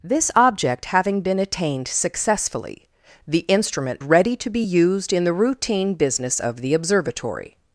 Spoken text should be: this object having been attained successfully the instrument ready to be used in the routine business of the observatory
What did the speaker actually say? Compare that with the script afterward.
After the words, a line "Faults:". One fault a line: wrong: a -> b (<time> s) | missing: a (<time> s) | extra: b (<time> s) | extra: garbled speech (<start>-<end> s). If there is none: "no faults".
this object having been attained successfully the instrument ready to be used in the routine business of the observatory
Faults:
no faults